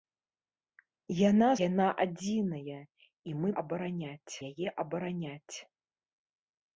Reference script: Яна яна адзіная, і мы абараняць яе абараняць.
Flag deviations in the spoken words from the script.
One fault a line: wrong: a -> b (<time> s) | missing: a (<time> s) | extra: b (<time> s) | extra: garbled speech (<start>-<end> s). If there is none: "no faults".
no faults